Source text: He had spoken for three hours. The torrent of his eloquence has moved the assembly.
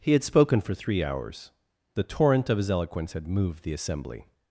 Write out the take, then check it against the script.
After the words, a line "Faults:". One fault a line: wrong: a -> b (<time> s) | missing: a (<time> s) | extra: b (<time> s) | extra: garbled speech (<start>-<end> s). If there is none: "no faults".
He had spoken for three hours. The torrent of his eloquence had moved the assembly.
Faults:
wrong: has -> had (3.1 s)